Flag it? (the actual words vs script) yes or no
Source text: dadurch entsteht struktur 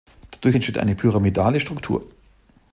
yes